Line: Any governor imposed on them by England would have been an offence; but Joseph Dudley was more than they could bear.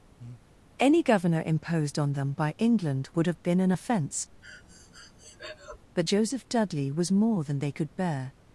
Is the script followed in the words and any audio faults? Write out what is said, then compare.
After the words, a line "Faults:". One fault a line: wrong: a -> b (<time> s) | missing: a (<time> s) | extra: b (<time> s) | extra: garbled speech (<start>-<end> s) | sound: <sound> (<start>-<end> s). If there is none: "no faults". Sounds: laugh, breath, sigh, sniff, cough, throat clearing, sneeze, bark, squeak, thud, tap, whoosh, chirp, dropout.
Any governor imposed on them by England would have been an offence; but Joseph Dudley was more than they could bear.
Faults:
sound: breath (0.2-0.5 s)
sound: breath (4.4-5.8 s)